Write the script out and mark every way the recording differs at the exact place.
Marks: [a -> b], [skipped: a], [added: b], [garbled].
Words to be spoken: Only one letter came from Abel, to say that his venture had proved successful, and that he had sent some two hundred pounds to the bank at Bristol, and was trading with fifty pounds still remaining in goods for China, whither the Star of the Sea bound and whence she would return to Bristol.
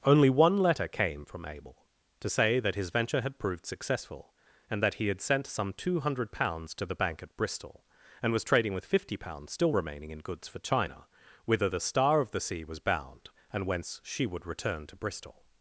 Only one letter came from Abel, to say that his venture had proved successful, and that he had sent some two hundred pounds to the bank at Bristol, and was trading with fifty pounds still remaining in goods for China, whither the Star of the Sea [added: was] bound and whence she would return to Bristol.